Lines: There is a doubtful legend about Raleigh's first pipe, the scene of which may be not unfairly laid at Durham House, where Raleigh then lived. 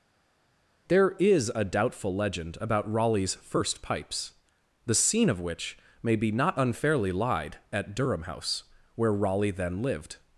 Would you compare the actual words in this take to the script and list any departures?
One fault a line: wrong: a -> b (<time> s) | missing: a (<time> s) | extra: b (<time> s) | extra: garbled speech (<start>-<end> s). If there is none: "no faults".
wrong: pipe -> pipes (3.8 s)
wrong: laid -> lied (7.1 s)